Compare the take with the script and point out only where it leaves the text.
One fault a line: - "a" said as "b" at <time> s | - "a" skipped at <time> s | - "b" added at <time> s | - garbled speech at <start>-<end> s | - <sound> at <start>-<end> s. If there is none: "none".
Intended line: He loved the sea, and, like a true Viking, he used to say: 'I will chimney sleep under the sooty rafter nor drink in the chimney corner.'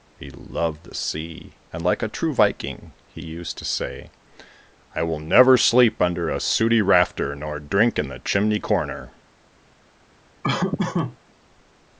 - "chimney" said as "never" at 5.2 s
- "the" said as "a" at 6.3 s
- laugh at 10.4-11.2 s